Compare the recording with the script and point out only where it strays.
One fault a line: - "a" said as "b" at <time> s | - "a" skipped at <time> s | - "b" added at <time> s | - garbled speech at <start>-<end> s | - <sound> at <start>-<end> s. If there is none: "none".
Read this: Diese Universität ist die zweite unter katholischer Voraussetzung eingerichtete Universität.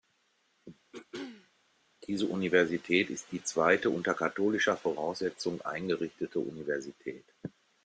- throat clearing at 0.9-1.5 s